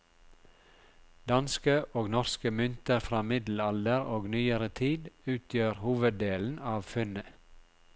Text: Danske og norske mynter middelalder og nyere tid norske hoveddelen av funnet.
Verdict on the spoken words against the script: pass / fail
fail